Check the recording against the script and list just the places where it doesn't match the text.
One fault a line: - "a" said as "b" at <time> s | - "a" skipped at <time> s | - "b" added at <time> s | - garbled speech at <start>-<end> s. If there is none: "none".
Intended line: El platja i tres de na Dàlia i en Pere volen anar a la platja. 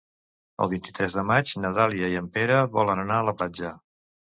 - "platja" said as "vint" at 0.7 s
- "maig" added at 1.3 s